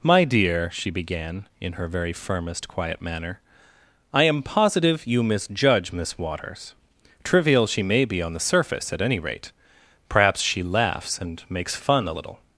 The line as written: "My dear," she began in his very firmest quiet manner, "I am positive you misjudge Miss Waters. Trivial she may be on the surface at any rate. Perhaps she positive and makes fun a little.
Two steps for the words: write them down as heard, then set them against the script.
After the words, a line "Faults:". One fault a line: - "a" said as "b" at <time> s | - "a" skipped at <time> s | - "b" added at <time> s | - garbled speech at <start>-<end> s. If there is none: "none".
"My dear," she began in her very firmest quiet manner, "I am positive you misjudge Miss Waters. Trivial she may be on the surface at any rate. Perhaps she laughs and makes fun a little.
Faults:
- "his" said as "her" at 1.7 s
- "positive" said as "laughs" at 10.6 s